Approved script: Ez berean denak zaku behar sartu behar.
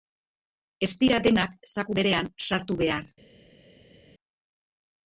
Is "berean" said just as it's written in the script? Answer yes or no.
no